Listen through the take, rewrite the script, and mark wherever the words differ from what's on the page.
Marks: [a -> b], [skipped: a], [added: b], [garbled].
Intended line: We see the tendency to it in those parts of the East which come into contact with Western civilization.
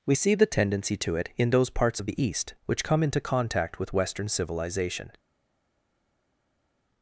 We see the tendency to it in those parts of the East which come into contact with Western civilization.